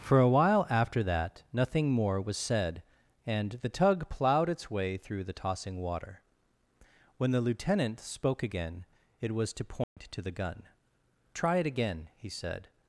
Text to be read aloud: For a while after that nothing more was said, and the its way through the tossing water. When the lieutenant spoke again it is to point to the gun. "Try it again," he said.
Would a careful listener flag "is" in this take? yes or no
yes